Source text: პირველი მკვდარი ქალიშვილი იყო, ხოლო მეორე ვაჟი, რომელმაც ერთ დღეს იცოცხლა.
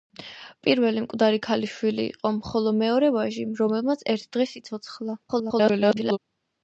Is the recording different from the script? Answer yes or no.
yes